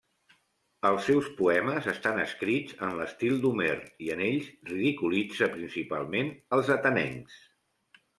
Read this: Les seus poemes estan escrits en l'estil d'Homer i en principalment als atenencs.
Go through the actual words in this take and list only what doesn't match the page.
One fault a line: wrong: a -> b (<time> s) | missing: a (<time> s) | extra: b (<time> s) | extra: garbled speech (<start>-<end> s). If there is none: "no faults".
wrong: Les -> Els (0.9 s)
extra: ells ridiculitza (4.3 s)